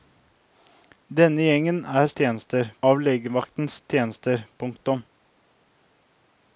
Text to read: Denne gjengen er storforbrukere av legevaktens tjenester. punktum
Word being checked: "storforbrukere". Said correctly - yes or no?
no